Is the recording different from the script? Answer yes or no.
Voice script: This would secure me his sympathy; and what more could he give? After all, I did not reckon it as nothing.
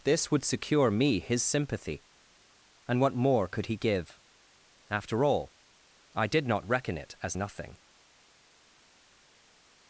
no